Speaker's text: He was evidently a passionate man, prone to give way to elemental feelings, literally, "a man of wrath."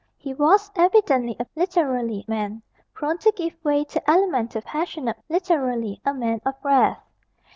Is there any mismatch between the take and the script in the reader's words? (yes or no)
yes